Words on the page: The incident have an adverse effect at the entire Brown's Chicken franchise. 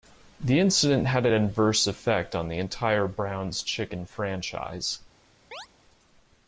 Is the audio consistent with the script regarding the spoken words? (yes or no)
no